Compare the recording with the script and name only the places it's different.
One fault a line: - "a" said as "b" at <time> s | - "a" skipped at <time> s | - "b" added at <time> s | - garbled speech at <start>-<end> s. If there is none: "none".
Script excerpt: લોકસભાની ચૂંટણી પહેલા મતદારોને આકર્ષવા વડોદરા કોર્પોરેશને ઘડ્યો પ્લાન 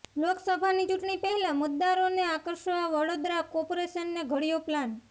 none